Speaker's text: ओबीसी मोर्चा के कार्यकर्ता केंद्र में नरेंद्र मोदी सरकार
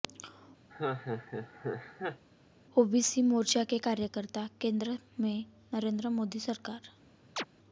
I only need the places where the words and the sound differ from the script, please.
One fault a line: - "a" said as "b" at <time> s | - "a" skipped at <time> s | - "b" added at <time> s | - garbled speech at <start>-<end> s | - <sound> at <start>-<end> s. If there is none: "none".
- laugh at 0.7-2.2 s
- chirp at 7.4-7.4 s